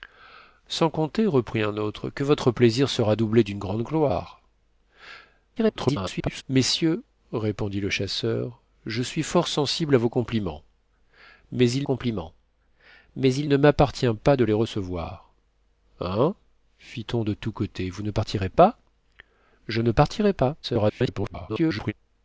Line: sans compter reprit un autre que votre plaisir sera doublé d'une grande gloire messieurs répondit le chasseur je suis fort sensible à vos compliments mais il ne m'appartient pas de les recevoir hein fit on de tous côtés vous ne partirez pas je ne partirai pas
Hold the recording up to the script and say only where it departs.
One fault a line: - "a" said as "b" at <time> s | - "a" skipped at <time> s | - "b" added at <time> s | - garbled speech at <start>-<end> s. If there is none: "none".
- garbled speech at 5.6-6.4 s
- "compliments mais il" added at 11.8 s
- garbled speech at 20.6-21.9 s